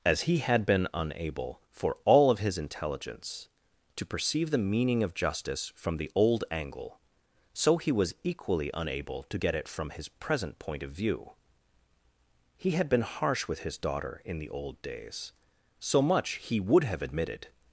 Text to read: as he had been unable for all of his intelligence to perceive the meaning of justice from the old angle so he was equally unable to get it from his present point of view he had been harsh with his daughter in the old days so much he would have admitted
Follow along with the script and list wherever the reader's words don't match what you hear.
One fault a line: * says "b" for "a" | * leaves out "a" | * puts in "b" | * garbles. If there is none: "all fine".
all fine